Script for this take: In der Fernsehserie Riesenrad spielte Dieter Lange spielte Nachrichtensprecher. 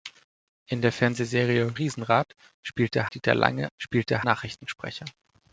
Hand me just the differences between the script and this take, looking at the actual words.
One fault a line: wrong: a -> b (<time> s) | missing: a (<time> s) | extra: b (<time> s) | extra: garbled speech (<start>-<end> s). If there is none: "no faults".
no faults